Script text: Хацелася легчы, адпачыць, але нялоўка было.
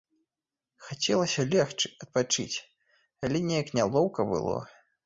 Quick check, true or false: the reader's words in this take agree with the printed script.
false